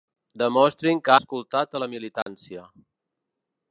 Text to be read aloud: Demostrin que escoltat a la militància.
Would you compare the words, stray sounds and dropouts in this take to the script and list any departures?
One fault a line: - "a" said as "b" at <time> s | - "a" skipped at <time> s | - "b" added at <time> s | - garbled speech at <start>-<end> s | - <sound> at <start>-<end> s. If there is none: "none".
- dropout at 2.2-2.3 s